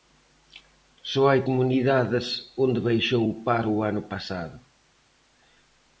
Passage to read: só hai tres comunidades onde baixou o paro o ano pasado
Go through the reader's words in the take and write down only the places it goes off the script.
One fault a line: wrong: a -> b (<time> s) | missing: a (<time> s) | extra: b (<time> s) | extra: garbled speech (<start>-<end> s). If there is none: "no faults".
missing: tres (1.4 s)